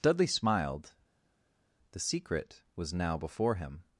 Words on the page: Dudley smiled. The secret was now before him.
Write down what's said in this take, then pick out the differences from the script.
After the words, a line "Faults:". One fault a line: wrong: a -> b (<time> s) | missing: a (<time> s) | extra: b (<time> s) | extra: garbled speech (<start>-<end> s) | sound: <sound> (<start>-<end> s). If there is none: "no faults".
Dudley smiled. The secret was now before him.
Faults:
no faults